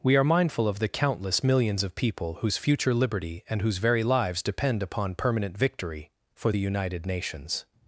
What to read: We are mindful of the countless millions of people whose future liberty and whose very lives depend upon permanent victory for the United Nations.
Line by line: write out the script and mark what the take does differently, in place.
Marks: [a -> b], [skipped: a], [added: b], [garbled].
We are mindful of the countless millions of people whose future liberty and whose very lives depend upon permanent victory for the United Nations.